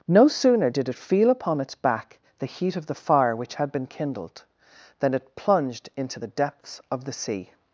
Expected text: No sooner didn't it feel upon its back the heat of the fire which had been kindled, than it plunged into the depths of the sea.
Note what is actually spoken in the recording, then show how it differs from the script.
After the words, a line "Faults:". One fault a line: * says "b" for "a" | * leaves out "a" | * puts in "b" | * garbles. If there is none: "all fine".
No sooner did it feel upon its back the heat of the fire which had been kindled, than it plunged into the depths of the sea.
Faults:
* says "did" for "didn't"